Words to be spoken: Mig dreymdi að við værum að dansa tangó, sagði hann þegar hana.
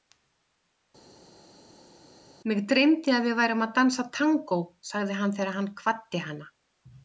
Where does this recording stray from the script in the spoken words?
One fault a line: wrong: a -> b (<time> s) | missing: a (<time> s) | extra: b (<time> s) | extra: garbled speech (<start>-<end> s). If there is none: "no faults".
extra: hann kvaddi (5.6 s)